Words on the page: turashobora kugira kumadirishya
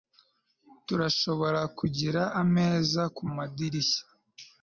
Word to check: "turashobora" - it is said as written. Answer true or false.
true